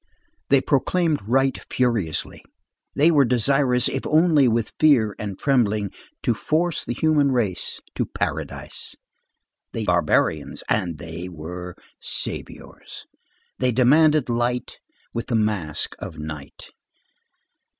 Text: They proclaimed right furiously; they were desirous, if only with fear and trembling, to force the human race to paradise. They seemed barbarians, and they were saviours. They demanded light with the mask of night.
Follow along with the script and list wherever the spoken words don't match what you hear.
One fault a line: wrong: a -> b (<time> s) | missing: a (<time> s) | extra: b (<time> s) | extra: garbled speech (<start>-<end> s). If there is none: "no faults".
missing: seemed (9.8 s)